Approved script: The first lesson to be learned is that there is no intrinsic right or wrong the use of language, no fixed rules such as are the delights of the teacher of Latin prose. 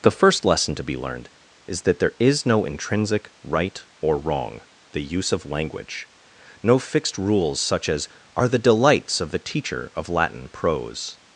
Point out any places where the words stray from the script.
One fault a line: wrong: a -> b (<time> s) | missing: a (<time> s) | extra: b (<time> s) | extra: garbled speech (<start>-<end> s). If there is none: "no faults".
no faults